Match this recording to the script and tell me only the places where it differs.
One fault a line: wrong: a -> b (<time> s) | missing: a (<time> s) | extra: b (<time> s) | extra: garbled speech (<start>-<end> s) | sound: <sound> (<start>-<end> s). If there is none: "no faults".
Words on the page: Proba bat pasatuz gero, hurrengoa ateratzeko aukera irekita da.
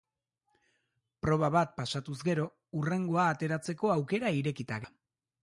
no faults